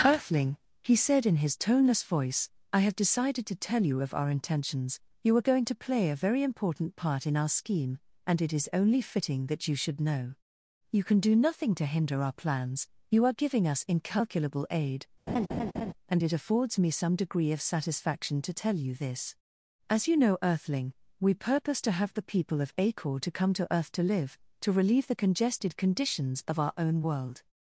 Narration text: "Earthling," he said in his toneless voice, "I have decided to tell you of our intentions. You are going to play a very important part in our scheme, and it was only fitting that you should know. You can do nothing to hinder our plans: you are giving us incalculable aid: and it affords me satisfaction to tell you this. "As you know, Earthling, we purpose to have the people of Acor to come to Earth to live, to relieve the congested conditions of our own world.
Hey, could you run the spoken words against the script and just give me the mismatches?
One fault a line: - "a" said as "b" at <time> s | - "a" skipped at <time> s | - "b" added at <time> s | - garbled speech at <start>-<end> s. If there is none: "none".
- "was" said as "is" at 8.5 s
- "some degree of" added at 16.9 s